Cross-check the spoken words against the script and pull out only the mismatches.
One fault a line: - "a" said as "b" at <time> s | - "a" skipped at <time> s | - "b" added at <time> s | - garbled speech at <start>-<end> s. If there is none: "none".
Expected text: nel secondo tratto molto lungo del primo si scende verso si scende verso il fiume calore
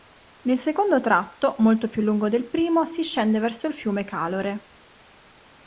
- "più" added at 1.9 s
- "si scende verso" skipped at 3.7 s